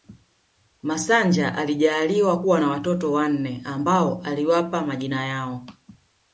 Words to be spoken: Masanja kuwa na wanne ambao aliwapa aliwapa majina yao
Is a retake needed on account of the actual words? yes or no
yes